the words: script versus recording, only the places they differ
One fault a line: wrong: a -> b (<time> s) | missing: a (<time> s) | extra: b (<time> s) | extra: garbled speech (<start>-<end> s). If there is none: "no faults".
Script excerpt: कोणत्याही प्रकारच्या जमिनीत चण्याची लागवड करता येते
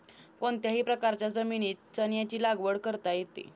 no faults